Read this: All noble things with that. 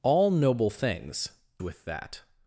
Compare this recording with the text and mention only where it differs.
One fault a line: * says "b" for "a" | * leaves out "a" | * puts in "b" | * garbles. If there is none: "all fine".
all fine